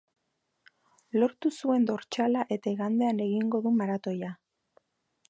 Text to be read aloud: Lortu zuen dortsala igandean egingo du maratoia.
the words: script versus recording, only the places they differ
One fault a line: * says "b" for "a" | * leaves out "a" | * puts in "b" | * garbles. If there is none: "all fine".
* puts in "eta"